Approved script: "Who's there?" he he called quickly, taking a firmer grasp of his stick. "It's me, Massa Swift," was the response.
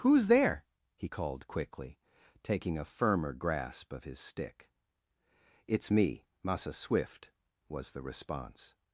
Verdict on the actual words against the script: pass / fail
fail